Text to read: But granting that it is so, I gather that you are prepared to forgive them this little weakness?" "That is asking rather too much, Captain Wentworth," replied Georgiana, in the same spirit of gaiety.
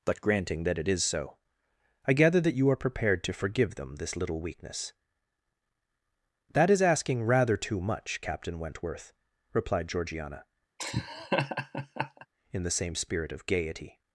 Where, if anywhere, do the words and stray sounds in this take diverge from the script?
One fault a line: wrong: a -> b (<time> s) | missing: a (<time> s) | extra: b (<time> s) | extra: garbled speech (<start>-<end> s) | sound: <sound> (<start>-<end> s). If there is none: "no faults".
sound: laugh (10.8-12.3 s)